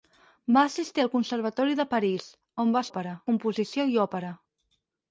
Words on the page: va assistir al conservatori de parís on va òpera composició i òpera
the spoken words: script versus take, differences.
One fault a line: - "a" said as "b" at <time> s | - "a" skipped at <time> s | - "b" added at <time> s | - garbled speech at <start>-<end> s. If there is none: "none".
none